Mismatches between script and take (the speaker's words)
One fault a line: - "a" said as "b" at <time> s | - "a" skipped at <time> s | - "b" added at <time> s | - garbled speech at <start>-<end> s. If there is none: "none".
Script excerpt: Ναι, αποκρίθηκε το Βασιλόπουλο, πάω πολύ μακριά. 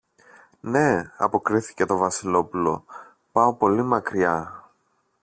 none